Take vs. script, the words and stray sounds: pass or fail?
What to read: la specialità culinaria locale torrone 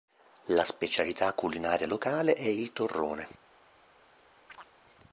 fail